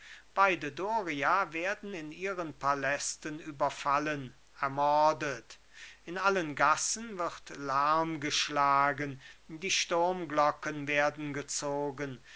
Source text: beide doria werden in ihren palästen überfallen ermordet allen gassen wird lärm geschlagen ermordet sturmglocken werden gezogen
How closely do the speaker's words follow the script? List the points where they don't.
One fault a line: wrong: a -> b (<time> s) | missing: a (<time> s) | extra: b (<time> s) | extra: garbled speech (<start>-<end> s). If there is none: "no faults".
extra: in (6.0 s)
wrong: ermordet -> die (9.5 s)